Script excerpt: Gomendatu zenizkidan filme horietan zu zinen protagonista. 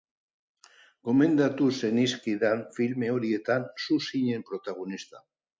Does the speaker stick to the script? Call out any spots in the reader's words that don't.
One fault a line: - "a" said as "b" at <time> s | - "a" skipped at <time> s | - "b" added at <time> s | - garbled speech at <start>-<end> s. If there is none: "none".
none